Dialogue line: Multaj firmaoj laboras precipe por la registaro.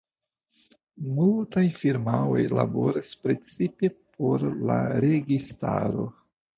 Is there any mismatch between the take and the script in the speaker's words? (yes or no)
no